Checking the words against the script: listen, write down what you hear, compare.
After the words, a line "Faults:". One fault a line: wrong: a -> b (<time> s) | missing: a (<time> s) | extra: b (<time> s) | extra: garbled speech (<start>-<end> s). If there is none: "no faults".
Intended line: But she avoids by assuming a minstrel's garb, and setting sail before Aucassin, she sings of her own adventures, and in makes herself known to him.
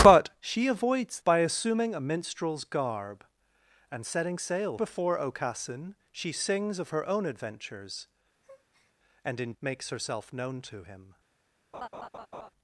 But she avoids by assuming a minstrel's garb, and setting sail before Aucassin, she sings of her own adventures, and in makes herself known to him.
Faults:
no faults